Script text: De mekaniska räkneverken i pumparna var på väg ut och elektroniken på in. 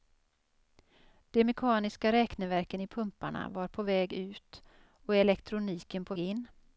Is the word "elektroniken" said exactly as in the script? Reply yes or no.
yes